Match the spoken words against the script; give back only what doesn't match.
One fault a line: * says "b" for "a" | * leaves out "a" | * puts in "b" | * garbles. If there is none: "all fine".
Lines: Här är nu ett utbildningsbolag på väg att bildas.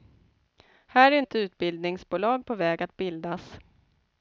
* leaves out "nu"